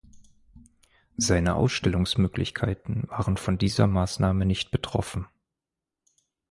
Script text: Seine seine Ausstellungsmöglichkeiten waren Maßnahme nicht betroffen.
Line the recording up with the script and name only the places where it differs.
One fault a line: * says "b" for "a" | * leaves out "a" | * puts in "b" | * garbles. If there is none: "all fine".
* leaves out "seine"
* puts in "von dieser"